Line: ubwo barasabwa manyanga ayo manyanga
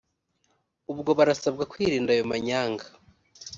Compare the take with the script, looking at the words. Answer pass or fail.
fail